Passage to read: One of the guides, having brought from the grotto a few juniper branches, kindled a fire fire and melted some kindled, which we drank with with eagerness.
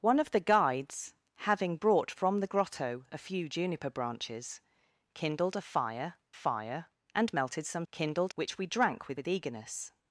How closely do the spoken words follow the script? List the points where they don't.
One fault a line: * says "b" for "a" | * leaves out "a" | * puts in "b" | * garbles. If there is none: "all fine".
all fine